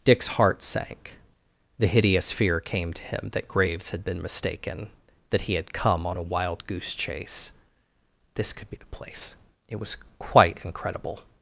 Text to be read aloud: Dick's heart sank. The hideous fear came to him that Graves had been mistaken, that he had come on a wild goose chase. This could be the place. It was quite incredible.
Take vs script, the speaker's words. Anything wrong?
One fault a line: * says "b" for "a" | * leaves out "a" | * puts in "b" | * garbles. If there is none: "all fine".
all fine